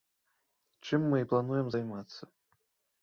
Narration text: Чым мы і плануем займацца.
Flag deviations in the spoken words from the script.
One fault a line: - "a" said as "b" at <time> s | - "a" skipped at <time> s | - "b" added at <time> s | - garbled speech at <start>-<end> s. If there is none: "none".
none